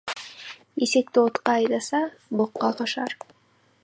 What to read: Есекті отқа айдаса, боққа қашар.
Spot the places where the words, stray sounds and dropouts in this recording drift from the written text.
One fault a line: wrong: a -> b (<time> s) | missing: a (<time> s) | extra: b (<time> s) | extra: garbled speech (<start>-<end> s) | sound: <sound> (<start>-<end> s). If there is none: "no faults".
no faults